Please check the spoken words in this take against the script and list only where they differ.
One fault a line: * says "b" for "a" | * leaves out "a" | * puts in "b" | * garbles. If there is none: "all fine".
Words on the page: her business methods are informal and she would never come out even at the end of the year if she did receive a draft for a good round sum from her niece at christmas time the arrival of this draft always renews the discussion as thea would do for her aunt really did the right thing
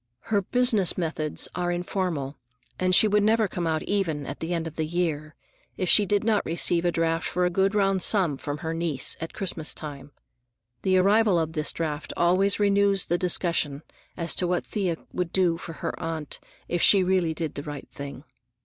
* puts in "not"
* puts in "to what"
* puts in "if she"